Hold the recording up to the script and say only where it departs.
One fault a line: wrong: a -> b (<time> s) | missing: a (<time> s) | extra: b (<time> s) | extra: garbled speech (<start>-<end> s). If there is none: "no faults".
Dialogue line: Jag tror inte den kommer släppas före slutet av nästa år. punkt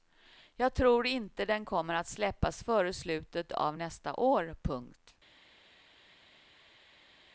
extra: att (1.9 s)